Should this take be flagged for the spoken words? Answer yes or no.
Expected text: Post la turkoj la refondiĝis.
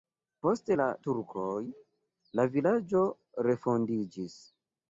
yes